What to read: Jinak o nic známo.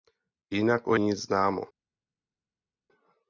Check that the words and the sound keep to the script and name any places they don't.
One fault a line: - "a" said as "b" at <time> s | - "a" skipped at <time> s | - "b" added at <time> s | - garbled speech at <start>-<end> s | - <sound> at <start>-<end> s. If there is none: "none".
none